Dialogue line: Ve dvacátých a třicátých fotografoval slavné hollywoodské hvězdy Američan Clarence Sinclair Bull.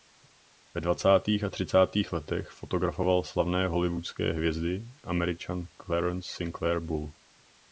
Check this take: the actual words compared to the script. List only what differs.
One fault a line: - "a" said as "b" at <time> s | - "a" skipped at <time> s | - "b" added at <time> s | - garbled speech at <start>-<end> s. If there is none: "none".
- "letech" added at 2.1 s